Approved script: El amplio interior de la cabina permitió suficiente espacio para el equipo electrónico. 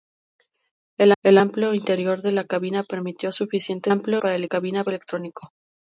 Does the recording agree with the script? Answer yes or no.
no